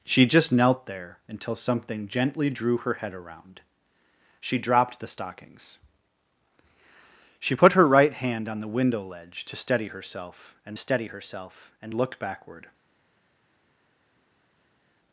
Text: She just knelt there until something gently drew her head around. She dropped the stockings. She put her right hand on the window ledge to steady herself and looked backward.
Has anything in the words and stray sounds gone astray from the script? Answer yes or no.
yes